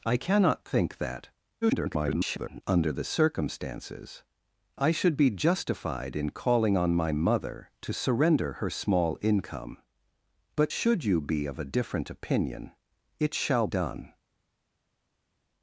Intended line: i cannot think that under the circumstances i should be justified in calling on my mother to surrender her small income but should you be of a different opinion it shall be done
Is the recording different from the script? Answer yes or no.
yes